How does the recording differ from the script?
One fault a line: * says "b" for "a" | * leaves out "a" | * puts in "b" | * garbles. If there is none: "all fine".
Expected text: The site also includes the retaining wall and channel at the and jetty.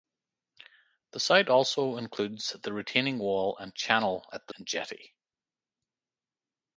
all fine